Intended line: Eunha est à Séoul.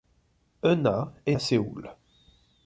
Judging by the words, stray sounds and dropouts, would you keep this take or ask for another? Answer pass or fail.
pass